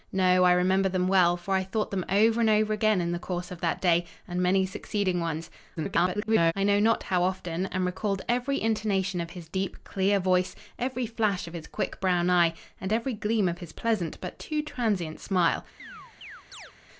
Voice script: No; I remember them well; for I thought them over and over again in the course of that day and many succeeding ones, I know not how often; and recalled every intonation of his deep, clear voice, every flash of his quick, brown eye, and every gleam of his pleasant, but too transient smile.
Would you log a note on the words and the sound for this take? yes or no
yes